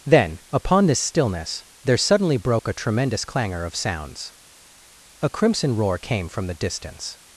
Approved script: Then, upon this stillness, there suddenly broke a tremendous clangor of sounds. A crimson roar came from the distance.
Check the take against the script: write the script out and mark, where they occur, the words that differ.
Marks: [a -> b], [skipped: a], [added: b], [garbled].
Then, upon this stillness, there suddenly broke a tremendous clangor of sounds. A crimson roar came from the distance.